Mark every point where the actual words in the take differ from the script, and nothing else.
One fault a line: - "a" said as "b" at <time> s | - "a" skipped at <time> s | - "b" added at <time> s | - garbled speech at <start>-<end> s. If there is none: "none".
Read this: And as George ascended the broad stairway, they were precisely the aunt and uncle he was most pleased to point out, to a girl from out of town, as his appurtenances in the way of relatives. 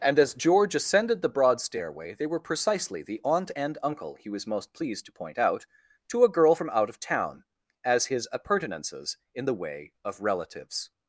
none